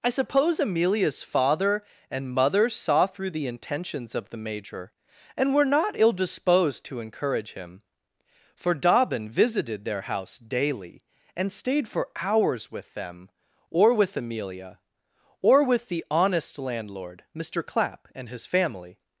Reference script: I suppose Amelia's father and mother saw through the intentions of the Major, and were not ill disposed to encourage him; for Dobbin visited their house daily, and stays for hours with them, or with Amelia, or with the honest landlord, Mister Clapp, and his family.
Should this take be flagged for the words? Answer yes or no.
yes